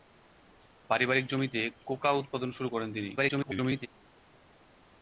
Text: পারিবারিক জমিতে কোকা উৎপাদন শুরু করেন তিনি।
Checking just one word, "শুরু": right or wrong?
right